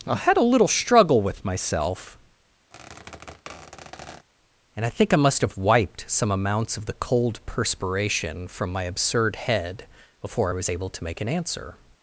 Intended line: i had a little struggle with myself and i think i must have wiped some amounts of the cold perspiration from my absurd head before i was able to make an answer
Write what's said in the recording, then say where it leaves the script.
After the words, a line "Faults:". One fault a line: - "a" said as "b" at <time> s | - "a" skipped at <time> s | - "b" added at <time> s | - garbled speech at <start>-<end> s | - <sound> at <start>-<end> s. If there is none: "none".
i had a little struggle with myself and i think i must have wiped some amounts of the cold perspiration from my absurd head before i was able to make an answer
Faults:
- squeak at 2.7-4.3 s